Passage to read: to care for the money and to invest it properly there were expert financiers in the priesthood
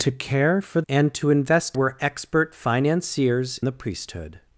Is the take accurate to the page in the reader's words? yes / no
no